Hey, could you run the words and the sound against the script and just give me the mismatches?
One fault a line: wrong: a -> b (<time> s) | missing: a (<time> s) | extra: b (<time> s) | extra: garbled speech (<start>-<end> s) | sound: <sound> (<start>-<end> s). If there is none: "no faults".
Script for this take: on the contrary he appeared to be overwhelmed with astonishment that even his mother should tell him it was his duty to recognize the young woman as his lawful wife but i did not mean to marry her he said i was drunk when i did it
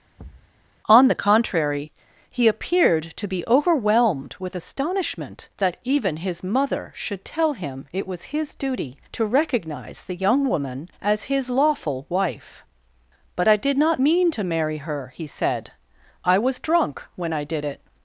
sound: thud (0.2-0.5 s)